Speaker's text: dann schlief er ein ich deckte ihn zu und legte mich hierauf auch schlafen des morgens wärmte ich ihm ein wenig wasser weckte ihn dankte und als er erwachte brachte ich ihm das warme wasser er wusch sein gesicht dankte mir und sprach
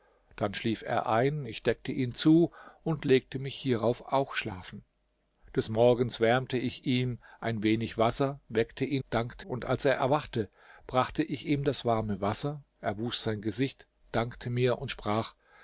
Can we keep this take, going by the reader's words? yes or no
yes